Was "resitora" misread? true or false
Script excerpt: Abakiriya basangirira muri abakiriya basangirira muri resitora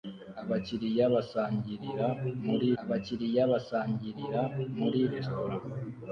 false